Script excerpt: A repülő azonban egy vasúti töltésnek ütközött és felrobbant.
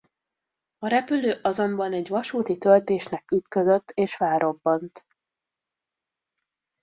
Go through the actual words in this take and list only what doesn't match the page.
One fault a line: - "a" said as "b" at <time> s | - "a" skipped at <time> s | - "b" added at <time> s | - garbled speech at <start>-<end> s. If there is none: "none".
none